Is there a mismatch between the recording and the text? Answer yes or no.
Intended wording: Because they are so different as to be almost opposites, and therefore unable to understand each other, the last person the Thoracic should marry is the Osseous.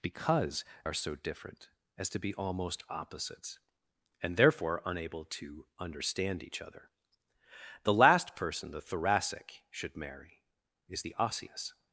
yes